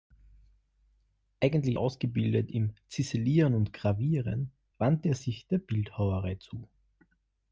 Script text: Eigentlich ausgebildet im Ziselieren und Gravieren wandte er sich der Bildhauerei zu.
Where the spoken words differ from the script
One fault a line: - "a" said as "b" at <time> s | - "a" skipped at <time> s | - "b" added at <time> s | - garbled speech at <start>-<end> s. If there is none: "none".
none